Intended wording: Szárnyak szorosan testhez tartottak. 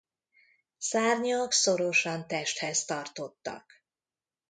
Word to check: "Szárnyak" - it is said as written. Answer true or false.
true